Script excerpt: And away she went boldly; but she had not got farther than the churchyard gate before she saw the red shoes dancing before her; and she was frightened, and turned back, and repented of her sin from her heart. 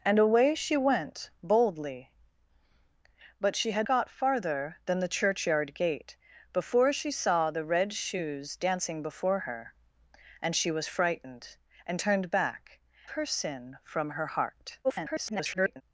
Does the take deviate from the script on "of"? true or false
true